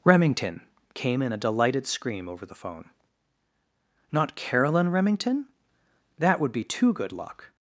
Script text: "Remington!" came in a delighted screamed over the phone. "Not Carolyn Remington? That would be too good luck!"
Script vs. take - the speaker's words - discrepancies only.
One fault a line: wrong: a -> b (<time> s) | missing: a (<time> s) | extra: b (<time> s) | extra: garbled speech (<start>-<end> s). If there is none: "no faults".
wrong: screamed -> scream (1.9 s)